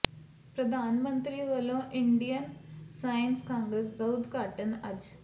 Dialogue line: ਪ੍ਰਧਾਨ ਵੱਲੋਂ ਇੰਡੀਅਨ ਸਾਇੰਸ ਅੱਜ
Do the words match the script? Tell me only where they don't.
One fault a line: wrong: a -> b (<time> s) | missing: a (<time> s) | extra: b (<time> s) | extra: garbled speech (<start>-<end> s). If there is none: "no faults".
extra: ਮੰਤਰੀ (1.0 s)
extra: ਕਾਂਗਰਸ ਦਾ ਉਦਘਾਟਨ (3.4 s)